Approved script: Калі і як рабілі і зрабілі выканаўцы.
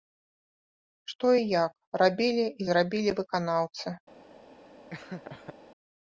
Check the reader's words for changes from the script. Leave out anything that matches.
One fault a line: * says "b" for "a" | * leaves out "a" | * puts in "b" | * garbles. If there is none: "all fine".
* says "Што" for "Калі"